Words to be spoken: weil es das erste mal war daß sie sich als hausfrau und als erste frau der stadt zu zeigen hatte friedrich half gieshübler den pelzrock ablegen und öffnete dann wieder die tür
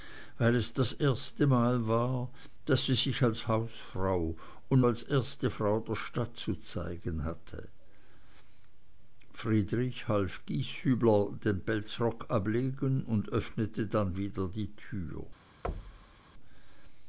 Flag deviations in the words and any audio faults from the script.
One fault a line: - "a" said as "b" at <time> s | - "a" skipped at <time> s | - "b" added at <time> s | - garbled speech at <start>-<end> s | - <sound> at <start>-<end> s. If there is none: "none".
- thud at 15.6-16.2 s